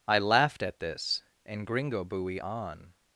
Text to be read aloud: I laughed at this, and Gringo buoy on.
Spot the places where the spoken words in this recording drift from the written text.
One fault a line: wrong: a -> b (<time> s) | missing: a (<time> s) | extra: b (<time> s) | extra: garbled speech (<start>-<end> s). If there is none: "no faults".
no faults